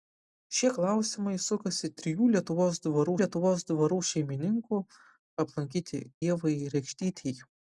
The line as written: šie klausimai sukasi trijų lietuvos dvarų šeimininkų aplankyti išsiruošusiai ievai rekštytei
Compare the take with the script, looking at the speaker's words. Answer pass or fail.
fail